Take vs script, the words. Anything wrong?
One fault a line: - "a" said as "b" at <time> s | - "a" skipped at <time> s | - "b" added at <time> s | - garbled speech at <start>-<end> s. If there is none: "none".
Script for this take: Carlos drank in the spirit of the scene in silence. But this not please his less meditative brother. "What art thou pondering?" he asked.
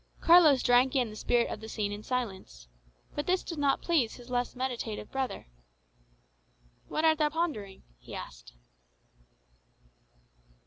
- "did" added at 3.4 s